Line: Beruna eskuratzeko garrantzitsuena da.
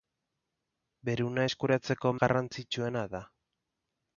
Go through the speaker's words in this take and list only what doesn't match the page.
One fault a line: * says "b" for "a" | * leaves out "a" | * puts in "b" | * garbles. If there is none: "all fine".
all fine